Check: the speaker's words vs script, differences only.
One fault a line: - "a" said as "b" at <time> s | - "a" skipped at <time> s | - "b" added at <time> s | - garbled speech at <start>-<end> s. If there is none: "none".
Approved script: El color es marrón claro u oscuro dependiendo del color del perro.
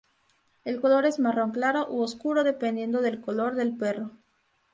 none